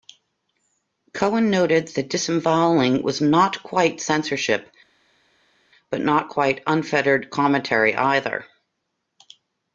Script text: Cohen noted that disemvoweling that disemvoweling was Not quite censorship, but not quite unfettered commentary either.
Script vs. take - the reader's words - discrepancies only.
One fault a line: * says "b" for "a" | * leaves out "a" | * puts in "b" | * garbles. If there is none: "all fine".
* leaves out "that disemvoweling"